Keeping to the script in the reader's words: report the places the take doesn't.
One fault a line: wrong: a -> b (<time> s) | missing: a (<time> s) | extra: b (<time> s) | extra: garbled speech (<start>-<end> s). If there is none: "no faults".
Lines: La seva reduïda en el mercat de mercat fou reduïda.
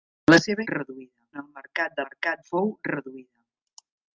no faults